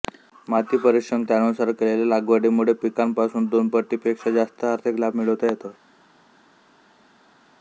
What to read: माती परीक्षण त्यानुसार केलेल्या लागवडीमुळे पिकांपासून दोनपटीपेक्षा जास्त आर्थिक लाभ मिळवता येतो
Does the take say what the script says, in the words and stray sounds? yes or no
yes